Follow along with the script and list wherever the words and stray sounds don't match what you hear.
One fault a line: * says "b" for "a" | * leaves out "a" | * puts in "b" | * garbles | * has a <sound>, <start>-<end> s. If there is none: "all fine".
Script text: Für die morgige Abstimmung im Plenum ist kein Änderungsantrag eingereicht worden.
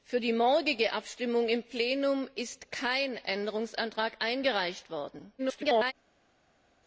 * garbles